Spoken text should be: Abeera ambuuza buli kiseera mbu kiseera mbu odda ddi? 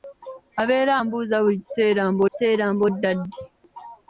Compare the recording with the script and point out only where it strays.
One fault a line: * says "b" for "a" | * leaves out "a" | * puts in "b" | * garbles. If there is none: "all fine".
all fine